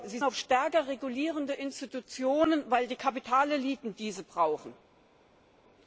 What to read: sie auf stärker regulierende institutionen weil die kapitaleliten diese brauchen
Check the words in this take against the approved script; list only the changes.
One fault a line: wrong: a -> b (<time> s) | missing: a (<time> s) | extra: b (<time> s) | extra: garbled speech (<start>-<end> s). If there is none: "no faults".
no faults